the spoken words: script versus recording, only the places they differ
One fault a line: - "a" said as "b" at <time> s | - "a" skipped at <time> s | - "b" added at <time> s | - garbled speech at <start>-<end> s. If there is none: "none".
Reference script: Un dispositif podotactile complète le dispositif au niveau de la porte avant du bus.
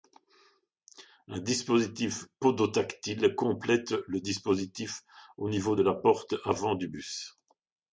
none